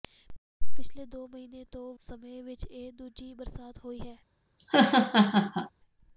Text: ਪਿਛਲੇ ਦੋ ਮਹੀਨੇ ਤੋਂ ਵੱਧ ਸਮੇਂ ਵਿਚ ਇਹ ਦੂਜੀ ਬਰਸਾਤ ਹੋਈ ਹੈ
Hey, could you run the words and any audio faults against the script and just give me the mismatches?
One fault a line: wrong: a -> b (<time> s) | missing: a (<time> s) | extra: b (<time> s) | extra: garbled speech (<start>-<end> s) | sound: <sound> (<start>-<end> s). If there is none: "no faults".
missing: ਵੱਧ (1.9 s)
sound: laugh (4.6-5.7 s)